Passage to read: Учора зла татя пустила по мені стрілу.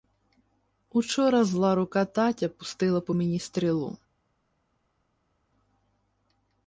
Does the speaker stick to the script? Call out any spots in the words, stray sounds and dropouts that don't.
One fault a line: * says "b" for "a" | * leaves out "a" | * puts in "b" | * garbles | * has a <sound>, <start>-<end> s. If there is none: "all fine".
* puts in "рука"